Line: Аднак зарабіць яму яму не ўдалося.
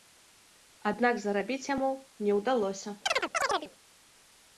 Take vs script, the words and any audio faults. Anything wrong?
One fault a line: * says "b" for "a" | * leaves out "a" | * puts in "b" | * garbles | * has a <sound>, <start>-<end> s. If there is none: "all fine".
* leaves out "яму"
* has a chirp, 3.1-3.7 s